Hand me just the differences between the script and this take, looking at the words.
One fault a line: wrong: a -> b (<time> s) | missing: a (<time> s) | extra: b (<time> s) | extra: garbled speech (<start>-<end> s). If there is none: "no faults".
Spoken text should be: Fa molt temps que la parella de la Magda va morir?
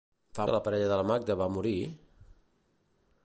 missing: molt temps (0.5 s)